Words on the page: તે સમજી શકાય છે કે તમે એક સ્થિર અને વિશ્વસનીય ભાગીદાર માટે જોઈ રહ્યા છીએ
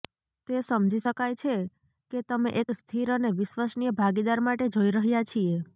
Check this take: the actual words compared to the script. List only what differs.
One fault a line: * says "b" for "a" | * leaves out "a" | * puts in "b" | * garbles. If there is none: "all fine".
all fine